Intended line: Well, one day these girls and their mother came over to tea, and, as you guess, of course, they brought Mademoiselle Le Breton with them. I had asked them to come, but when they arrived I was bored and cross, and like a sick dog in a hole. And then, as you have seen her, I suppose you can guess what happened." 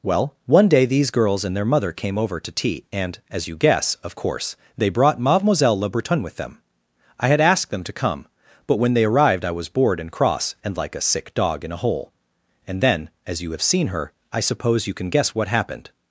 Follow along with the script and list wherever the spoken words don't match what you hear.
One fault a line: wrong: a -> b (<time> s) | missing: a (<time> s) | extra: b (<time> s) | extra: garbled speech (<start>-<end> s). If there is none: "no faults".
no faults